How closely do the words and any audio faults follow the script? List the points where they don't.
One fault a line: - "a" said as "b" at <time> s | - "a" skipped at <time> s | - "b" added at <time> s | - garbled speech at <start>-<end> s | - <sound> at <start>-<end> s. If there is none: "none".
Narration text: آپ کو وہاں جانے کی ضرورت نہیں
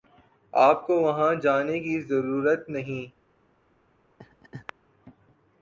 - laugh at 4.2-4.7 s